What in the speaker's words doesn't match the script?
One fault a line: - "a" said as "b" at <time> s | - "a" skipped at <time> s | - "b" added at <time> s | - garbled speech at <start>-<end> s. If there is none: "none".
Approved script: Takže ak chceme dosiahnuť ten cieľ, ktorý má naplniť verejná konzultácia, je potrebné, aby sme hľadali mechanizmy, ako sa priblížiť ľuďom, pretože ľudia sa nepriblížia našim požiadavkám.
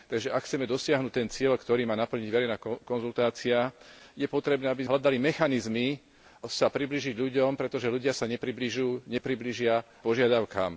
- "sme" skipped at 4.9 s
- "ako" skipped at 6.0 s
- "našim" skipped at 9.8 s